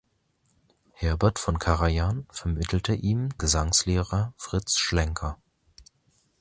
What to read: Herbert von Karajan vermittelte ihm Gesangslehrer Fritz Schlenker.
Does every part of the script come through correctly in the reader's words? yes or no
yes